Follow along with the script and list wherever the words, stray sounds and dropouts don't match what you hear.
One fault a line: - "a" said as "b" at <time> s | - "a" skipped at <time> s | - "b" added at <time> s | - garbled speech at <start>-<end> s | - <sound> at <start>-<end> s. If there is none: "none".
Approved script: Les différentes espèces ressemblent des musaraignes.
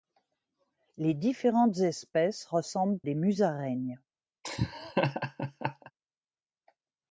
- laugh at 4.4-5.9 s